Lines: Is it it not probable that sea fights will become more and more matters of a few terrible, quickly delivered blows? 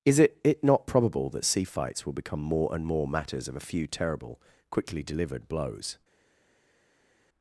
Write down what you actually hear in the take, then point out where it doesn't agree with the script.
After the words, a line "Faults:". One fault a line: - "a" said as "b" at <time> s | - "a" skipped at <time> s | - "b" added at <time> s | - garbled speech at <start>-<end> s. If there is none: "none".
Is it it not probable that sea fights will become more and more matters of a few terrible, quickly delivered blows?
Faults:
none